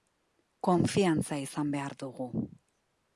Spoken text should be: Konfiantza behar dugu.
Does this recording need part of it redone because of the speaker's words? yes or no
yes